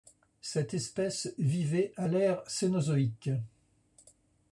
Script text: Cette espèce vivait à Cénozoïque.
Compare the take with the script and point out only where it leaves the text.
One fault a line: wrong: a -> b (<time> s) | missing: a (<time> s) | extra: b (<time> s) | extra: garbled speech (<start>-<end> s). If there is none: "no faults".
extra: l'ère (2.1 s)